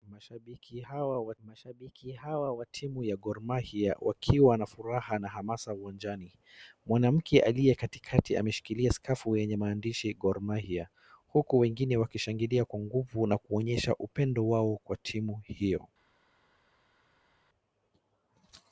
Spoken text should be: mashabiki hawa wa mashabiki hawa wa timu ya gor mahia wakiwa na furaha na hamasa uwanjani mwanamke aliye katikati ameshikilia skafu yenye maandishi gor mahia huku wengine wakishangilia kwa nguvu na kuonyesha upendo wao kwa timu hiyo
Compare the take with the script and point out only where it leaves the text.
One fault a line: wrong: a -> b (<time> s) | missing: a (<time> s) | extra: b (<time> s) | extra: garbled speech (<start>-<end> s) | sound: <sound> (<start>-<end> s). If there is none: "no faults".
no faults